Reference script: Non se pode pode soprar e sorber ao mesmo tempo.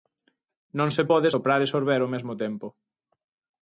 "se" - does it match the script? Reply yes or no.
yes